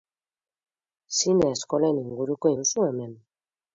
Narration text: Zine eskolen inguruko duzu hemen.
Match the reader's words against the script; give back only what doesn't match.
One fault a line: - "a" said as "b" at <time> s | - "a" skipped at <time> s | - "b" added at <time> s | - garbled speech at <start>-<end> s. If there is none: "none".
none